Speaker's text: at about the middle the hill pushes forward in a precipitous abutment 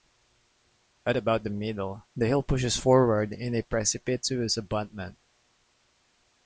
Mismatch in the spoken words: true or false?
false